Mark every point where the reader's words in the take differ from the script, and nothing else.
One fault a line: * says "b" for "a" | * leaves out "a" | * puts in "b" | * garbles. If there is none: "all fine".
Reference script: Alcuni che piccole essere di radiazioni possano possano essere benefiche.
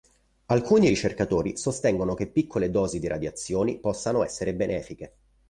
* puts in "ricercatori sostengono"
* says "dosi" for "essere"
* leaves out "possano"